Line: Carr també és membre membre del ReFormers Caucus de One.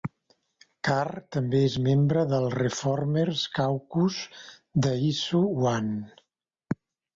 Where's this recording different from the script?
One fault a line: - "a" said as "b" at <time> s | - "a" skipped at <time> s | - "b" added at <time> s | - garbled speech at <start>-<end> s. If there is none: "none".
- "membre" skipped at 2.2 s
- "Issue" added at 5.1 s